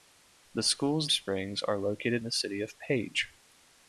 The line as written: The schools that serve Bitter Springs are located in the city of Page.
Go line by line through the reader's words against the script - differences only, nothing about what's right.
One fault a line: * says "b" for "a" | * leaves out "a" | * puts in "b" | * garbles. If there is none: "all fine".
* leaves out "that serve Bitter"
* leaves out "in"